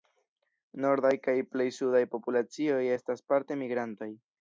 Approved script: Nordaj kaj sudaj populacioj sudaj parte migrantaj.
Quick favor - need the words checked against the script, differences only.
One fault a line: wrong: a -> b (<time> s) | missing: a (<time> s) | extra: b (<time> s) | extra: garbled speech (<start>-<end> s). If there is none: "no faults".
extra: plej (1.5 s)
wrong: sudaj -> estas (3.0 s)